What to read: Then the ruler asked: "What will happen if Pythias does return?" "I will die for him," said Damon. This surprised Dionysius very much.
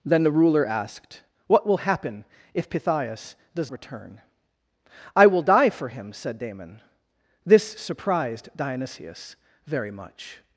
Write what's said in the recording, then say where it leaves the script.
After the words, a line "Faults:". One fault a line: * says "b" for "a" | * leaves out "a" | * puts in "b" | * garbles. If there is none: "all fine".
Then the ruler asked: "What will happen if Pythias does return?" "I will die for him," said Damon. This surprised Dionysius very much.
Faults:
all fine